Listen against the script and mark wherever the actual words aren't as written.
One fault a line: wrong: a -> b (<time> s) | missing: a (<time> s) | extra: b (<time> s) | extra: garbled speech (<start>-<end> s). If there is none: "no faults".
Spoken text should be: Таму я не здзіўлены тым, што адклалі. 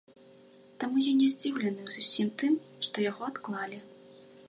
extra: зусім (2.0 s)
extra: яго (3.1 s)